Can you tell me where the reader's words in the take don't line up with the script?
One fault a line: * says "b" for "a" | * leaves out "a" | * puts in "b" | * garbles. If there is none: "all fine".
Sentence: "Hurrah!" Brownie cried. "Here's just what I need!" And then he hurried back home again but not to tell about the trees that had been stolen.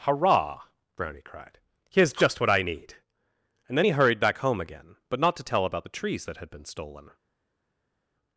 all fine